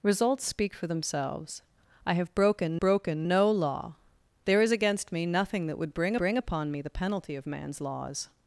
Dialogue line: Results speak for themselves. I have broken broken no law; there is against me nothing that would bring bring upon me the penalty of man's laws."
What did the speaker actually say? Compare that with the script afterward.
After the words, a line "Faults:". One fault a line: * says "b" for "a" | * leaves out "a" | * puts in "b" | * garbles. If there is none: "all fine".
Results speak for themselves. I have broken broken no law; there is against me nothing that would bring bring upon me the penalty of man's laws."
Faults:
all fine